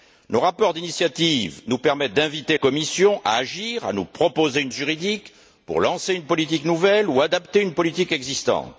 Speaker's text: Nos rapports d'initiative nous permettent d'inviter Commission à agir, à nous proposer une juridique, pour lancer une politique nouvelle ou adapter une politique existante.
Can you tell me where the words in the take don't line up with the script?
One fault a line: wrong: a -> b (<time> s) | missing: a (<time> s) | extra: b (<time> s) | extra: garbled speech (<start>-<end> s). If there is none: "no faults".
no faults